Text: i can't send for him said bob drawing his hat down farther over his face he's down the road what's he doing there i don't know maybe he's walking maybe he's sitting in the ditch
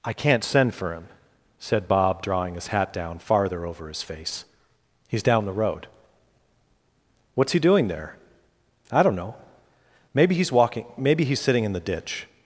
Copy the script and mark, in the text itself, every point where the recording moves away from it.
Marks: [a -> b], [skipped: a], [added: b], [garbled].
i can't send for him said bob drawing his hat down farther over his face he's down the road what's he doing there i don't know maybe he's walking maybe he's sitting in the ditch